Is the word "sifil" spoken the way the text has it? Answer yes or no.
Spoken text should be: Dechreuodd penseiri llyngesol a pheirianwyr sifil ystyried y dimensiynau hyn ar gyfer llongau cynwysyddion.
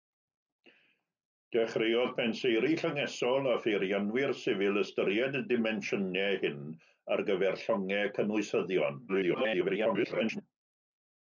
yes